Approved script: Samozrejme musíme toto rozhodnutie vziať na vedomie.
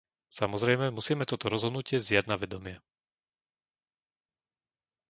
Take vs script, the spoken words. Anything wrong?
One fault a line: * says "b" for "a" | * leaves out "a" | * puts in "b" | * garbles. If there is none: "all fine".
all fine